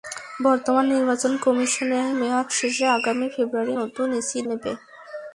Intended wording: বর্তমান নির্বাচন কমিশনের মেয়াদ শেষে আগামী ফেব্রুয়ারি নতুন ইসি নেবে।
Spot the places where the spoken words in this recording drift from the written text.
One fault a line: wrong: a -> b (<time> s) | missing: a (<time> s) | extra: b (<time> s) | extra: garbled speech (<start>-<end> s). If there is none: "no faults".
no faults